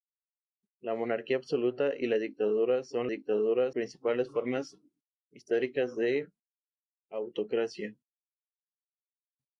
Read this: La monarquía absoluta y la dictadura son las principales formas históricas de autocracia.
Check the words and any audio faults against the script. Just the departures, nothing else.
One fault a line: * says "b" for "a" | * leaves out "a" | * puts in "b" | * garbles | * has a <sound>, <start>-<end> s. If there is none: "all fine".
* says "dictadura" for "las"